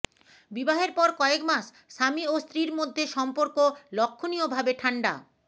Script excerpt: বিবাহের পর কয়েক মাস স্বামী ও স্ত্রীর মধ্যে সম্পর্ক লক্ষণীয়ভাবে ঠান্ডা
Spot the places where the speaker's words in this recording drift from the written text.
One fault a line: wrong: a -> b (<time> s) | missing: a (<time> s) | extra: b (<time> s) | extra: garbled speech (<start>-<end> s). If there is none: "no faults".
no faults